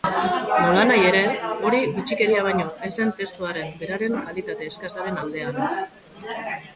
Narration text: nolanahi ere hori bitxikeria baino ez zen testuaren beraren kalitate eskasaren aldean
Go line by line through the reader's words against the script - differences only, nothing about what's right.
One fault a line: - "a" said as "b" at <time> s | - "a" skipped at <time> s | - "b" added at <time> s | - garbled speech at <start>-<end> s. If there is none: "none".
none